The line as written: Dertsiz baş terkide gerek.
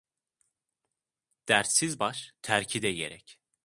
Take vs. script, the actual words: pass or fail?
pass